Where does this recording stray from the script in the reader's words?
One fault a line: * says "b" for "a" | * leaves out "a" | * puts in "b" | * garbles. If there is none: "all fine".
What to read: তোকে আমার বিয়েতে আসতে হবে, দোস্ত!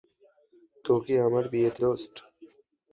* leaves out "আসতে হবে"